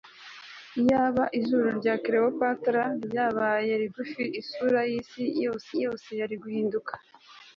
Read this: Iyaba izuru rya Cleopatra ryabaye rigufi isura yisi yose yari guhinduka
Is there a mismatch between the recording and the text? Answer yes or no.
yes